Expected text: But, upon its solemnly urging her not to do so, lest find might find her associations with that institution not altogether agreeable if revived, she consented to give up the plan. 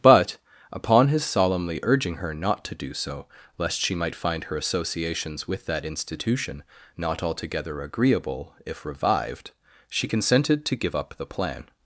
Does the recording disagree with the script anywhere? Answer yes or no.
yes